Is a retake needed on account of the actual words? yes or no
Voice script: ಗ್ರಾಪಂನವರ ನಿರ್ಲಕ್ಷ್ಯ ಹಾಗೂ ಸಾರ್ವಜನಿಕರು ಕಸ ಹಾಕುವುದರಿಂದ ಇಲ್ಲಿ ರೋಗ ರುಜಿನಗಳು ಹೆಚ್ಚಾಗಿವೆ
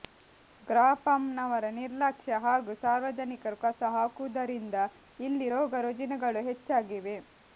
no